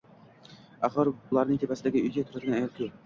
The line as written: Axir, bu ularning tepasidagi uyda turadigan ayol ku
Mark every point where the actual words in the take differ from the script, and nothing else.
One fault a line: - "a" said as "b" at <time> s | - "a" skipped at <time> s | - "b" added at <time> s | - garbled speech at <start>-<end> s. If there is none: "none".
- "bu" skipped at 1.1 s